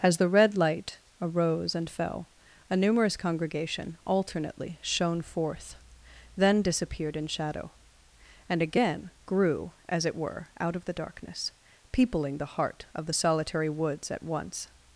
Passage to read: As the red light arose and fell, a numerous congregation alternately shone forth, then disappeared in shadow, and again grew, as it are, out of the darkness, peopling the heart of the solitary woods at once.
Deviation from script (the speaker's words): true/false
true